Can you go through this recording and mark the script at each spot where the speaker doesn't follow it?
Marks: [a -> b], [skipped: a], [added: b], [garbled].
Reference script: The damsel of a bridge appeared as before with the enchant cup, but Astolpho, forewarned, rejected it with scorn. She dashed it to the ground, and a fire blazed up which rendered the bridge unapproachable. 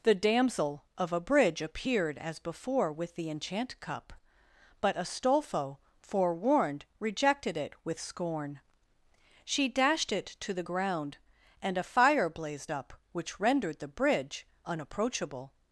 The damsel of a bridge appeared as before with the enchant cup, but Astolpho, forewarned, rejected it with scorn. She dashed it to the ground, and a fire blazed up which rendered the bridge unapproachable.